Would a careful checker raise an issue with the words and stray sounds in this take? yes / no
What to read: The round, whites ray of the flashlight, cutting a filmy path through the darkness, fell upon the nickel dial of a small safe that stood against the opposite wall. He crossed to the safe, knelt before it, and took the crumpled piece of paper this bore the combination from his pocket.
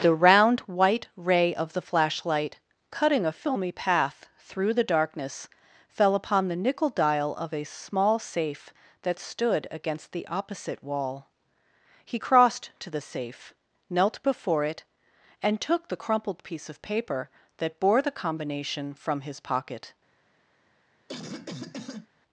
yes